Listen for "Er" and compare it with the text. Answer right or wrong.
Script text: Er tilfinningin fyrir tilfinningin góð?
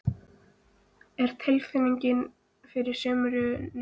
right